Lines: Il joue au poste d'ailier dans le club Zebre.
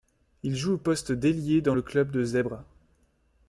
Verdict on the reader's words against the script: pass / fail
fail